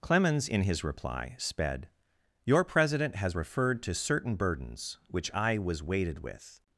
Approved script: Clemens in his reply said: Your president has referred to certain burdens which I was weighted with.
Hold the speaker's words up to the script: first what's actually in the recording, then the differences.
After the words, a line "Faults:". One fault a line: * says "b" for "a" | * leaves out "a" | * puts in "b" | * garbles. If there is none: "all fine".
Clemens in his reply sped: Your president has referred to certain burdens which I was weighted with.
Faults:
* says "sped" for "said"